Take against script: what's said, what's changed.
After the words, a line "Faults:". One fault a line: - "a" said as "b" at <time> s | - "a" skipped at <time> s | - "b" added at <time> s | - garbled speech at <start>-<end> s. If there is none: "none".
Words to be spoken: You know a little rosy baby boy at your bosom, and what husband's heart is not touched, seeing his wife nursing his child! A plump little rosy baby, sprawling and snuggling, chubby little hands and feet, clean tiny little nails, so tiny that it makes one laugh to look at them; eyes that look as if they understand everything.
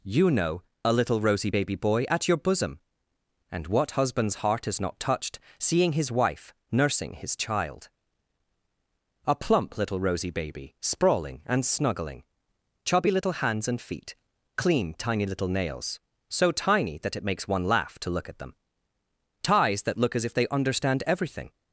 You know a little rosy baby boy at your bosom, and what husband's heart is not touched, seeing his wife nursing his child! A plump little rosy baby, sprawling and snuggling, chubby little hands and feet, clean tiny little nails, so tiny that it makes one laugh to look at them; ties that look as if they understand everything.
Faults:
- "eyes" said as "ties" at 19.4 s